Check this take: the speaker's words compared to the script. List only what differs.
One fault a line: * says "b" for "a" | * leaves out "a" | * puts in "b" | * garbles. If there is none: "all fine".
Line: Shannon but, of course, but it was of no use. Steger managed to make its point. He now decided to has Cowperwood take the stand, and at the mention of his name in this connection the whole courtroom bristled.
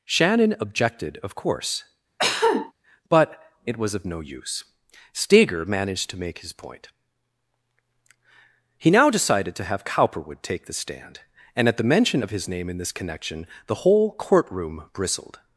* says "objected" for "but"
* says "his" for "its"
* says "have" for "has"